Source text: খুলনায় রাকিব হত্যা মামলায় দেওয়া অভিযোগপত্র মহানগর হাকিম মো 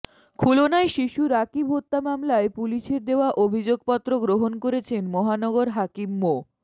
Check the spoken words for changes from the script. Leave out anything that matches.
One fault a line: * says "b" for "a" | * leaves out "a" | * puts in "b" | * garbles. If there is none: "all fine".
* puts in "শিশু"
* puts in "পুলিশের"
* puts in "গ্রহণ করেছেন"